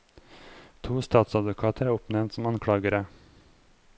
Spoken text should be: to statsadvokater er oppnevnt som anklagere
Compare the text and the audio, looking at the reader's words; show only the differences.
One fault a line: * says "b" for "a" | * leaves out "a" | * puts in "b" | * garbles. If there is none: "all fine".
all fine